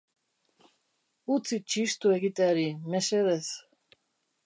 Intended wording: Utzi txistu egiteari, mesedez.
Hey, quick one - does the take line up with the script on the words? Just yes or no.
yes